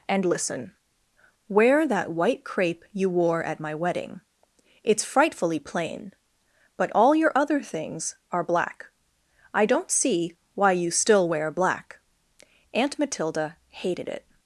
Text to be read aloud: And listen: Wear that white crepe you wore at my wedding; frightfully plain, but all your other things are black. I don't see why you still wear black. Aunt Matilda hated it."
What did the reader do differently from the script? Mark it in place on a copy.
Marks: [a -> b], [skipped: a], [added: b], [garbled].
And listen: Wear that white crepe you wore at my wedding; [added: it's] frightfully plain, but all your other things are black. I don't see why you still wear black. Aunt Matilda hated it."